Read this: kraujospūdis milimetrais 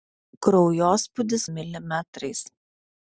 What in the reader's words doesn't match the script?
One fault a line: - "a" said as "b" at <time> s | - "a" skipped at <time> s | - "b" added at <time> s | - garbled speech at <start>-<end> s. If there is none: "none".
none